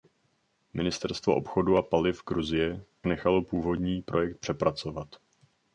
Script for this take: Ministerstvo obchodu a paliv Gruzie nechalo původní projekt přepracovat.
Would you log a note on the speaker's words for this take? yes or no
no